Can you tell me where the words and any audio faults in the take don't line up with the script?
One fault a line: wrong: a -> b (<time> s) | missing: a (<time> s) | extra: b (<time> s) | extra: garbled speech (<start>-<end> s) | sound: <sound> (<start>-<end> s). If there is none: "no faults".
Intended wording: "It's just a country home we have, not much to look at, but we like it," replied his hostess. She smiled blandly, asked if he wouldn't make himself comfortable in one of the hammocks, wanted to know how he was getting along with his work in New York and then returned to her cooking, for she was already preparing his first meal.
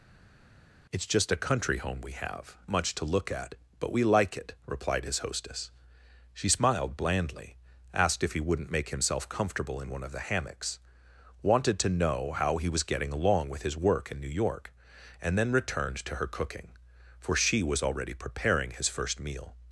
missing: not (2.6 s)